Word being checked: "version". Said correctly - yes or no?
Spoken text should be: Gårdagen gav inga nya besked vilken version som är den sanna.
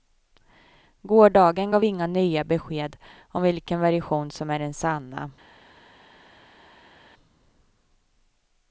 yes